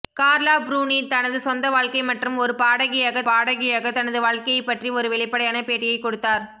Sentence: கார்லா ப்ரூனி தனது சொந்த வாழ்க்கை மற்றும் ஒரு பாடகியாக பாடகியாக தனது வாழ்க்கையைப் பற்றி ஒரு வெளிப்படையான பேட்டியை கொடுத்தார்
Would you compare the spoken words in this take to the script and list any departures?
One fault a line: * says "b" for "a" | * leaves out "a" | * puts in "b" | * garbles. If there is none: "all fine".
all fine